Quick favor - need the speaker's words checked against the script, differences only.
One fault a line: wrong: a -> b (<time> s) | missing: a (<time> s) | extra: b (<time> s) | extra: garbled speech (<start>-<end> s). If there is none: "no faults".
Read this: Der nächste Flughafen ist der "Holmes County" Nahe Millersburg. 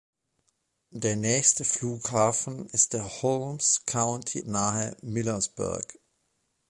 no faults